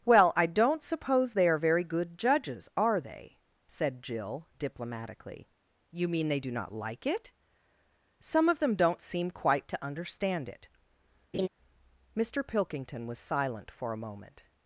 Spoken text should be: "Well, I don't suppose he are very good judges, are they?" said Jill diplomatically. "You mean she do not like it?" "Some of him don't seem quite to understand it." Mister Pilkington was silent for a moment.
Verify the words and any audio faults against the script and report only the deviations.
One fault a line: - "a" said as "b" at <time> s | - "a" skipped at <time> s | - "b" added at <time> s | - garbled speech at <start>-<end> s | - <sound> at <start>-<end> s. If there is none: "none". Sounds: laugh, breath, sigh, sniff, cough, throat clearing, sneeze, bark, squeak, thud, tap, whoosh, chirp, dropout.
- "he" said as "they" at 1.3 s
- "she" said as "they" at 6.3 s
- "him" said as "them" at 8.6 s
- laugh at 11.3-11.5 s